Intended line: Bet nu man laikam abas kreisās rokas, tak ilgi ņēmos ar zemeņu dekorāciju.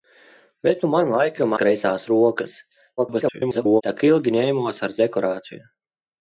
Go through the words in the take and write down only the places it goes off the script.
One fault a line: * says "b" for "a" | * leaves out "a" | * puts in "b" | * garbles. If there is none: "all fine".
* leaves out "abas"
* garbles
* leaves out "zemeņu"